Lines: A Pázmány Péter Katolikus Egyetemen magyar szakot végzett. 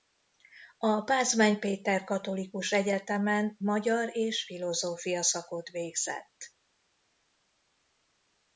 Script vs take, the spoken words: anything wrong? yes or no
yes